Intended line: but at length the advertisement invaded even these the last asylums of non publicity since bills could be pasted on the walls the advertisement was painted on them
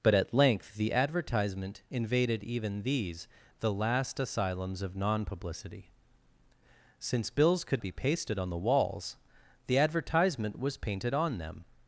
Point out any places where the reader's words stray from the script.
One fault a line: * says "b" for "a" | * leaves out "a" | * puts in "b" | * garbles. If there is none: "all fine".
all fine